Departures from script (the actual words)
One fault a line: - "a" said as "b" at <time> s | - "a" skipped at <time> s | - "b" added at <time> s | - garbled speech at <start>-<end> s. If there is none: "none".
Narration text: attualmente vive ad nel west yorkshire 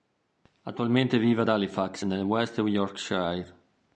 - "halifax" added at 1.5 s